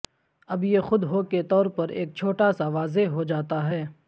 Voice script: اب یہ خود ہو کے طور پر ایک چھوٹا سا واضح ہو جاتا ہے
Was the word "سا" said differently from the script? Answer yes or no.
no